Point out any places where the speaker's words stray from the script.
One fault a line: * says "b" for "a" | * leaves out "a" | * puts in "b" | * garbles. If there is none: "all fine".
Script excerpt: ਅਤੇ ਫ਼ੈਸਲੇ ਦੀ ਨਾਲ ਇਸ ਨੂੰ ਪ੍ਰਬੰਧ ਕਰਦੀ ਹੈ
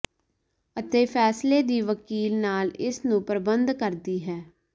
* puts in "ਵਕੀਲ"